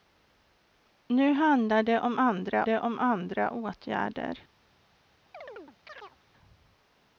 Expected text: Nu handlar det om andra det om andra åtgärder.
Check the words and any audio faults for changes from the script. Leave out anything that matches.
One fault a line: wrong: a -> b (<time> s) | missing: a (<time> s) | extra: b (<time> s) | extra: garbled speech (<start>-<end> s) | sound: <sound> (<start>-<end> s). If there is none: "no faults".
sound: chirp (5.3-6.2 s)